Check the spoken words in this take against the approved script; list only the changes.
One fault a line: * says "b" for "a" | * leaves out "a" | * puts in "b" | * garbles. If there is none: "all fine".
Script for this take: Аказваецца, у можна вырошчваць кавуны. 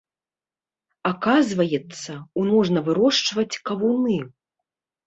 all fine